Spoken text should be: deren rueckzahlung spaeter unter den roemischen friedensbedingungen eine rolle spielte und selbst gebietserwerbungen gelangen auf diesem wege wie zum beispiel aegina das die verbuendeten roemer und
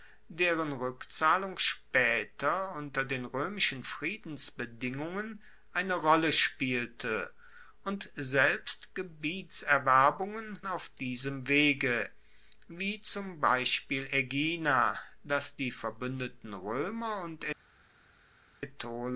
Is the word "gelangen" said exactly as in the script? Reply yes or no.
no